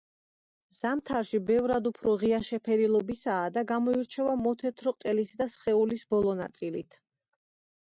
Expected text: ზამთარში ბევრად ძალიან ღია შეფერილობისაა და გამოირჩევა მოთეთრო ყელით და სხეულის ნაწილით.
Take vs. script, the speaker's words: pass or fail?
fail